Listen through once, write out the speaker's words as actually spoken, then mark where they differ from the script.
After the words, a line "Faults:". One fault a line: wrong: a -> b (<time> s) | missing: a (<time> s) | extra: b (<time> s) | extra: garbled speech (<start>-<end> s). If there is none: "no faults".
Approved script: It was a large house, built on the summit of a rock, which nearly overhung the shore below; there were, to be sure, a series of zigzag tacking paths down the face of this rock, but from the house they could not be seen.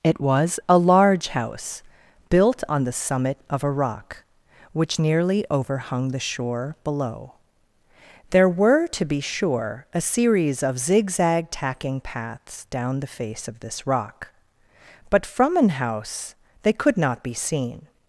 It was a large house, built on the summit of a rock, which nearly overhung the shore below; there were, to be sure, a series of zigzag tacking paths down the face of this rock, but from an house they could not be seen.
Faults:
wrong: the -> an (15.6 s)